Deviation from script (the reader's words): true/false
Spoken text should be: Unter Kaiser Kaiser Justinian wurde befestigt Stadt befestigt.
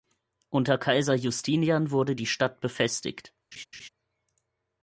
true